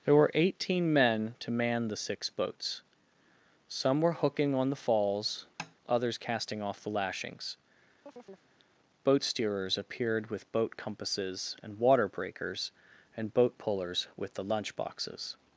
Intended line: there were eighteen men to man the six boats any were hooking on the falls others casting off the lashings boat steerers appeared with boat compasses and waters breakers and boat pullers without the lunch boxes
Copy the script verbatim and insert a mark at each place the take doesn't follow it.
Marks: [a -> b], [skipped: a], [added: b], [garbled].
there were eighteen men to man the six boats [any -> some] were hooking on the falls others casting off the lashings boat steerers appeared with boat compasses and [waters -> water] breakers and boat pullers [without -> with] the lunch boxes